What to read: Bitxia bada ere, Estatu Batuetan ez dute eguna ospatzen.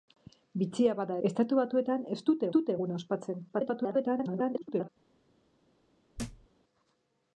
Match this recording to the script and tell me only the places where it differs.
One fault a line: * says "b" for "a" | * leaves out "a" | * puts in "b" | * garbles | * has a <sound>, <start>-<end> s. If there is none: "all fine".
* leaves out "ere"
* puts in "dute"
* garbles
* has a thud, 6.2-6.5 s